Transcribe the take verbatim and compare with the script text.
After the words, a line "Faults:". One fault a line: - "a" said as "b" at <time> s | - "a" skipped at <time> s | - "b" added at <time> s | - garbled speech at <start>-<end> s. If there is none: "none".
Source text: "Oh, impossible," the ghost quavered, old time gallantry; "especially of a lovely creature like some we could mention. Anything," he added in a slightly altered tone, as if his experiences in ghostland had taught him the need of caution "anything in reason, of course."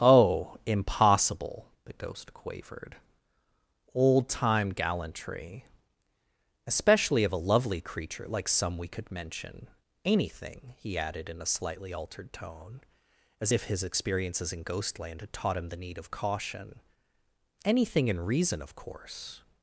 "Oh, impossible," the ghost quavered, old time gallantry; "especially of a lovely creature like some we could mention. Anything," he added in a slightly altered tone, as if his experiences in ghostland had taught him the need of caution "anything in reason, of course."
Faults:
none